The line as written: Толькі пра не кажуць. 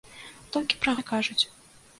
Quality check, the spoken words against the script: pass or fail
pass